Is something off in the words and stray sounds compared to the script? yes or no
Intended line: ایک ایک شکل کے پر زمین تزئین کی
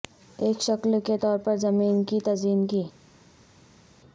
yes